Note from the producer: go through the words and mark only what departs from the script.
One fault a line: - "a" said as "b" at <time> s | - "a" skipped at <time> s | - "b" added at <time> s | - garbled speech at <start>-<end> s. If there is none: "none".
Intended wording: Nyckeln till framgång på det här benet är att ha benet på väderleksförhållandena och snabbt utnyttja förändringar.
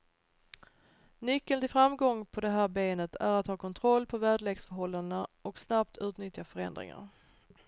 - "benet" said as "kontroll" at 3.6 s